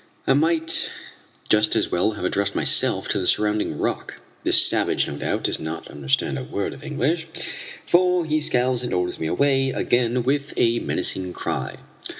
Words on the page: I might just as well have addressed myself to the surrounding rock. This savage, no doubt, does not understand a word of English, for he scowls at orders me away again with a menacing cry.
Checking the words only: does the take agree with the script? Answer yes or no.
yes